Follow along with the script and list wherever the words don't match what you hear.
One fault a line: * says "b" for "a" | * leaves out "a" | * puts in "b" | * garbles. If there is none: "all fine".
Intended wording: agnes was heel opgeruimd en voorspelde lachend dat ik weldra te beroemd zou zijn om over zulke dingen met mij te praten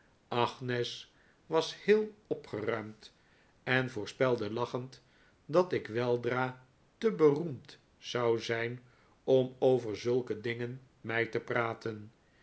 * leaves out "met"